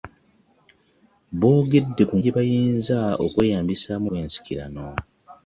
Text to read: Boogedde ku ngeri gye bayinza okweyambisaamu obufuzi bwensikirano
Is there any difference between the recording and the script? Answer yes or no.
yes